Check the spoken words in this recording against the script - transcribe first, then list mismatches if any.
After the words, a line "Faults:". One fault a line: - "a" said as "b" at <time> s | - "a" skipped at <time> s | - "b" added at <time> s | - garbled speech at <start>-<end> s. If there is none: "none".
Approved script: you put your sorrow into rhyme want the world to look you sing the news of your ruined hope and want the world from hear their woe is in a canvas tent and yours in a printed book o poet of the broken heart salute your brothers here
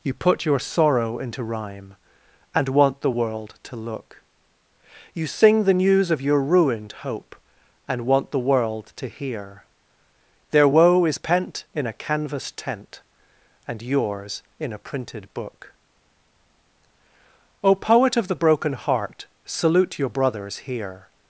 you put your sorrow into rhyme and want the world to look you sing the news of your ruined hope and want the world to hear their woe is pent in a canvas tent and yours in a printed book o poet of the broken heart salute your brothers here
Faults:
- "and" added at 2.5 s
- "from" said as "to" at 9.0 s
- "pent" added at 11.2 s